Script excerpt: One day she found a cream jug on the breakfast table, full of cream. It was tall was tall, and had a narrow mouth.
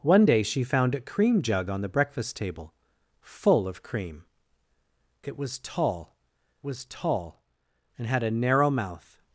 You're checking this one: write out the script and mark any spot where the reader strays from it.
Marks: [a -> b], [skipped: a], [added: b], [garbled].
One day she found a cream jug on the breakfast table, full of cream. It was tall was tall, and had a narrow mouth.